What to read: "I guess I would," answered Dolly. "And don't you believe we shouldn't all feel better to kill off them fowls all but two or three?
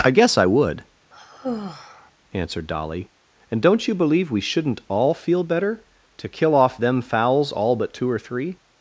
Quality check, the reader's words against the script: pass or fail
pass